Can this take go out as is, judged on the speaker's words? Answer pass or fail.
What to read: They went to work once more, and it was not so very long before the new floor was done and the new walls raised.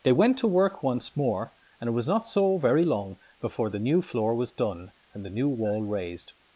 fail